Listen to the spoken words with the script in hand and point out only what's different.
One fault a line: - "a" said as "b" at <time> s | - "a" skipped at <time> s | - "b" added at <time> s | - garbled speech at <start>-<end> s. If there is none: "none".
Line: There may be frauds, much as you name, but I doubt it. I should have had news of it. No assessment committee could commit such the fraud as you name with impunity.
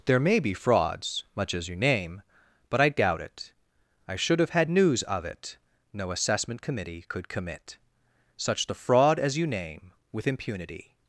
none